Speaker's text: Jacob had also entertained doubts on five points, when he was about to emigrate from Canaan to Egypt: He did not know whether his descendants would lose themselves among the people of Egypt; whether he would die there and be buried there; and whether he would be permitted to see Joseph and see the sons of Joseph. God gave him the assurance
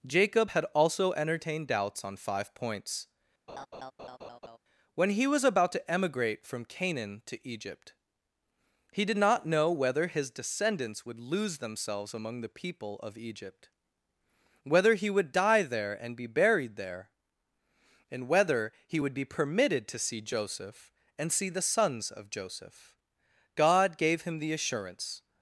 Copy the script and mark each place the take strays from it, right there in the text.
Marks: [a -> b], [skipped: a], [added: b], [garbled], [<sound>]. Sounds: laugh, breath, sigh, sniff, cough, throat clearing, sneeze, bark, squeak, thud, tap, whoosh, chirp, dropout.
Jacob had also entertained doubts on five points, [laugh] when he was about to emigrate from Canaan to Egypt: He did not know whether his descendants would lose themselves among the people of Egypt; whether he would die there and be buried there; and whether he would be permitted to see Joseph and see the sons of Joseph. God gave him the assurance